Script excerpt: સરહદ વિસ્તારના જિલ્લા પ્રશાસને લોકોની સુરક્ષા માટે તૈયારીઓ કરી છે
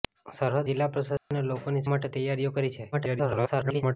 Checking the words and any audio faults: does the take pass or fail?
fail